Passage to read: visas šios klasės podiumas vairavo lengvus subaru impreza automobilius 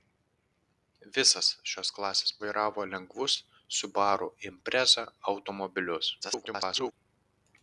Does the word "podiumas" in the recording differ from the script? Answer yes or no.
yes